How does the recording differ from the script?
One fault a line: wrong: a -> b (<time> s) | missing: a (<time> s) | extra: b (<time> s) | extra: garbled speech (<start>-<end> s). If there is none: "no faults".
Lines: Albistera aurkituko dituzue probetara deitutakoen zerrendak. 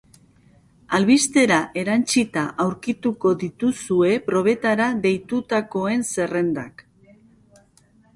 extra: erantsita (1.8 s)